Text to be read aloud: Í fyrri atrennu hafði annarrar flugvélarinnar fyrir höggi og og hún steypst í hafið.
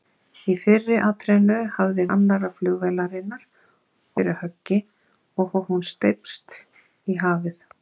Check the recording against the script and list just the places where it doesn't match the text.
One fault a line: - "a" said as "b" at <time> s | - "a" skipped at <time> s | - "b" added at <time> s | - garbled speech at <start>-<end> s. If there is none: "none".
none